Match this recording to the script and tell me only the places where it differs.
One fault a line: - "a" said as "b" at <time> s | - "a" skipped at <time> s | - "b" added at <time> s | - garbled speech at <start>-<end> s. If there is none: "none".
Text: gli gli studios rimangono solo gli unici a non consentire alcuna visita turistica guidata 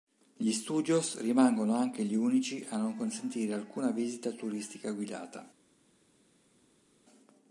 - "gli" skipped at 0.5 s
- "solo" said as "anche" at 1.7 s